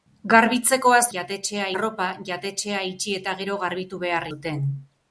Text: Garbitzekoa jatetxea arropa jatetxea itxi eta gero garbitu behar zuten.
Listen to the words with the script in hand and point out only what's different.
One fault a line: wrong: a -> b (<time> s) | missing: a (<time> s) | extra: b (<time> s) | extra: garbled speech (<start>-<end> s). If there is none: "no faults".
no faults